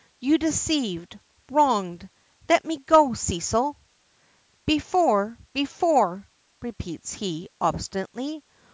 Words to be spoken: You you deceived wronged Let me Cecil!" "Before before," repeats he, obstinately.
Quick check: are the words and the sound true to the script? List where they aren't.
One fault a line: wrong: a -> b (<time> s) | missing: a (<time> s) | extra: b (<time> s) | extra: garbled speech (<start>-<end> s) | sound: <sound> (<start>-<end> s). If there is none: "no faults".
missing: you (0.4 s)
extra: go (2.8 s)